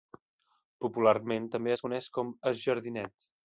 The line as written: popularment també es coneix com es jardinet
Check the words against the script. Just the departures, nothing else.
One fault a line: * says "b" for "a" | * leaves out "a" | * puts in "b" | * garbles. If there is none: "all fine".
all fine